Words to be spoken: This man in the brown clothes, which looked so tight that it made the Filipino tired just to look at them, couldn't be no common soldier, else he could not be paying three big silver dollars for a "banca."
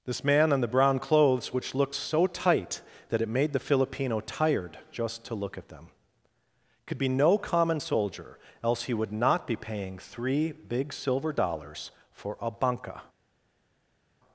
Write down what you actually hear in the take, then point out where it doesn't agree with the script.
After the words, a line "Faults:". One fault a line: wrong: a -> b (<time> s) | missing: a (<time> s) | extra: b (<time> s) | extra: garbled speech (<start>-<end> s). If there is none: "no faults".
This man in the brown clothes, which looked so tight that it made the Filipino tired just to look at them, could be no common soldier, else he would not be paying three big silver dollars for a "banca."
Faults:
wrong: couldn't -> could (6.8 s)
wrong: could -> would (8.9 s)